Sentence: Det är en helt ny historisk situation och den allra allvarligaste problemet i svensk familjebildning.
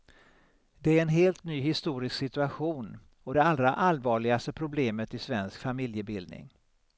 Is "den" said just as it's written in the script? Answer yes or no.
no